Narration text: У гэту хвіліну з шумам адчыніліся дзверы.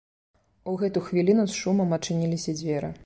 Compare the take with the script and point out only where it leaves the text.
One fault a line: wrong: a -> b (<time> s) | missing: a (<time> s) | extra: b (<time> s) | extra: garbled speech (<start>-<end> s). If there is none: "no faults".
no faults